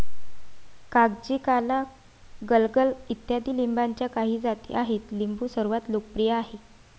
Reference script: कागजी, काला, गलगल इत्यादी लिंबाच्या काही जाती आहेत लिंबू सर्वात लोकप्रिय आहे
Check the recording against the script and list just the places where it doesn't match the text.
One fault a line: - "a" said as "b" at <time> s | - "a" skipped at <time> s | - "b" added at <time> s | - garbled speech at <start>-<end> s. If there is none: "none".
none